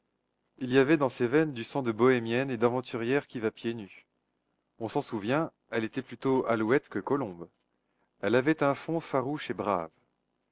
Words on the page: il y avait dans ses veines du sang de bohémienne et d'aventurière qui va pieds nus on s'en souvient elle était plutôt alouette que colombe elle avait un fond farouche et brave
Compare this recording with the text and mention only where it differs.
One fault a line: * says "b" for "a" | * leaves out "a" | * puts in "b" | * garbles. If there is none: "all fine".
all fine